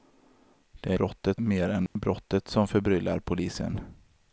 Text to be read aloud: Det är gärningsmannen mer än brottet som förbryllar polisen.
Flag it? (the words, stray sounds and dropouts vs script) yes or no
yes